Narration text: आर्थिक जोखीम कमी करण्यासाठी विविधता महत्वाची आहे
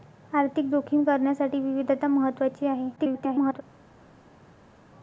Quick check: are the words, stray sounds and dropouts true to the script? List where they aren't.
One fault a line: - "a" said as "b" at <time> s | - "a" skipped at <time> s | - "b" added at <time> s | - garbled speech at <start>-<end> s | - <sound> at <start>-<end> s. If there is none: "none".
- "कमी" skipped at 1.0 s
- garbled speech at 3.0-3.6 s